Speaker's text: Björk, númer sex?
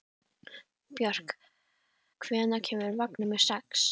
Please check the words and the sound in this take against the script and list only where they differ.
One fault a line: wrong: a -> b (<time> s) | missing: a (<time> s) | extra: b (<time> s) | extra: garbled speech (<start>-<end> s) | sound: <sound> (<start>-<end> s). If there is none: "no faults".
extra: hvenær kemur vagn (2.3 s)